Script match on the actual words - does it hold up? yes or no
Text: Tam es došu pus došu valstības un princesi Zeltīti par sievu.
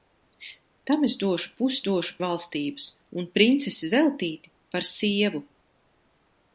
yes